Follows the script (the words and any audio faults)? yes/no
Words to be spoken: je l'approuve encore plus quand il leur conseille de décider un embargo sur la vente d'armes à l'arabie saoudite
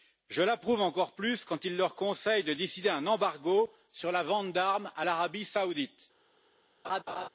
no